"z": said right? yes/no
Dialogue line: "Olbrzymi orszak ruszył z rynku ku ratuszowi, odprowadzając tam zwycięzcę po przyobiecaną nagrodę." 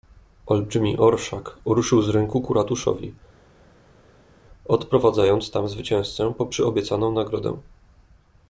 yes